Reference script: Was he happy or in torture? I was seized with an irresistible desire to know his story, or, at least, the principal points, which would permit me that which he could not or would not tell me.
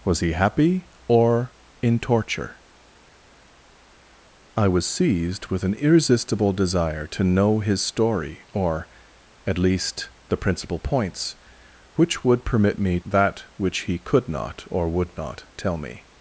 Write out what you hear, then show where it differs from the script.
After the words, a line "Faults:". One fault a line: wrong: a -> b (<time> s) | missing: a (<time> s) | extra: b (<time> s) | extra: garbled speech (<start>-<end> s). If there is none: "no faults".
Was he happy or in torture? I was seized with an irresistible desire to know his story, or, at least, the principal points, which would permit me that which he could not or would not tell me.
Faults:
no faults